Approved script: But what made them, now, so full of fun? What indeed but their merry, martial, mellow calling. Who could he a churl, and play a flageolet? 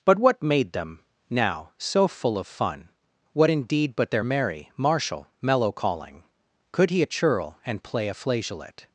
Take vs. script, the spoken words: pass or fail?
fail